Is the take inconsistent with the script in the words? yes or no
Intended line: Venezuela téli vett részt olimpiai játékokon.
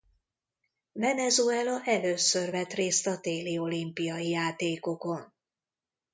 yes